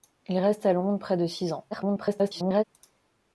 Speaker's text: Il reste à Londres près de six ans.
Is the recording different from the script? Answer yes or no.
yes